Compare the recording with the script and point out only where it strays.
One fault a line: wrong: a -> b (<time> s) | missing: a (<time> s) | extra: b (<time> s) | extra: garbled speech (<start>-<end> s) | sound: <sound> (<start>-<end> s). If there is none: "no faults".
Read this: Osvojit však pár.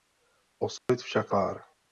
sound: dropout (0.8-0.9 s)